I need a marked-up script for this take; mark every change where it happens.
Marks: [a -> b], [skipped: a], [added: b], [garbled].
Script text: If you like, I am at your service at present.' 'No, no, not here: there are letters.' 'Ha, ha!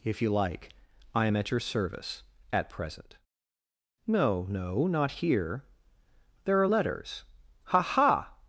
If you like, I am at your service at present.' 'No, no, not here: there are letters.' 'Ha, ha!